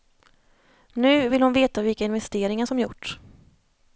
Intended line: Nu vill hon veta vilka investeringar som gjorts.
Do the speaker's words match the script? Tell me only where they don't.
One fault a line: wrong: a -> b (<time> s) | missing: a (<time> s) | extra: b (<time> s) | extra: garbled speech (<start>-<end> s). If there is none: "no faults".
no faults